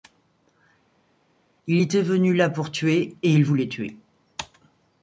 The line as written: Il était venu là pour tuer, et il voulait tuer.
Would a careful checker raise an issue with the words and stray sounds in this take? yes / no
no